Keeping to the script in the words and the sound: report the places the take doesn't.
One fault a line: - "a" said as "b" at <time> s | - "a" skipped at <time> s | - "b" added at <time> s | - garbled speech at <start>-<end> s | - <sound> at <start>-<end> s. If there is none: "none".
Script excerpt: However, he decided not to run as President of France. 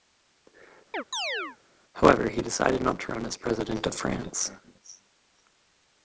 - chirp at 0.9-1.6 s